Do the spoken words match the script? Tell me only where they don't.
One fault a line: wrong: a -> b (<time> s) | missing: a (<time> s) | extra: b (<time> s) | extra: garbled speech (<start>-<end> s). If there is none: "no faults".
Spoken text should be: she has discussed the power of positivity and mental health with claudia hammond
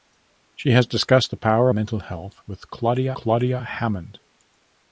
missing: of positivity and (1.7 s)
extra: claudia (3.1 s)